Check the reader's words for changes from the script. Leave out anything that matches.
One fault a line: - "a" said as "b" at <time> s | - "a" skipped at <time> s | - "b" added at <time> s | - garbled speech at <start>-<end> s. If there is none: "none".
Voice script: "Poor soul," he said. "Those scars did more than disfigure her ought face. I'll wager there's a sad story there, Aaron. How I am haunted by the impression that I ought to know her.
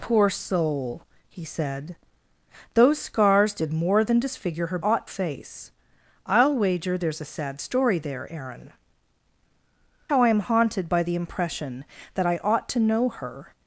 none